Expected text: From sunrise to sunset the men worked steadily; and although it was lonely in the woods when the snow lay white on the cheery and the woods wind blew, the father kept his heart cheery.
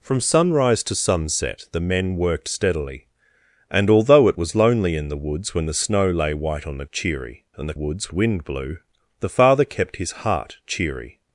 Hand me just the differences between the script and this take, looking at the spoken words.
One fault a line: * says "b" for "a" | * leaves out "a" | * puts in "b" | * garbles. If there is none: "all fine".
all fine